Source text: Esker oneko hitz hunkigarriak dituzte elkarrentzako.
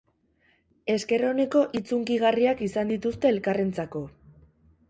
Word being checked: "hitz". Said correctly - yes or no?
yes